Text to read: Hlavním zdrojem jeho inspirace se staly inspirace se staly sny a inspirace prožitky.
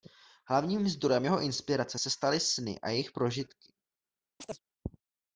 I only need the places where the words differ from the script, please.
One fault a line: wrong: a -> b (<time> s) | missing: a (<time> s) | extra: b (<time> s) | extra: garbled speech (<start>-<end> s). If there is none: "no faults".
missing: inspirace se staly (2.4 s)
wrong: inspirace -> jejich (2.9 s)